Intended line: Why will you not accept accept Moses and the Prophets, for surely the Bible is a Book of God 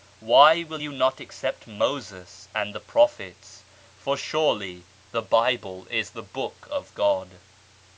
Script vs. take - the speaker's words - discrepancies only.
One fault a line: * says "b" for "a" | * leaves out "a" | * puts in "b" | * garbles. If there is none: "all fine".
* leaves out "accept"
* says "the" for "a"